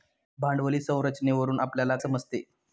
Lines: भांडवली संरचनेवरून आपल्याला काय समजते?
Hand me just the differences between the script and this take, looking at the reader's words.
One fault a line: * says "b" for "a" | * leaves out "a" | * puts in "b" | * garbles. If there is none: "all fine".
* leaves out "काय"